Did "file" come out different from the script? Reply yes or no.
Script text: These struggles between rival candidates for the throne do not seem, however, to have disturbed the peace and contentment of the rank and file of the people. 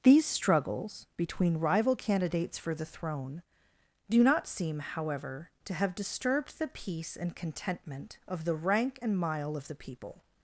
yes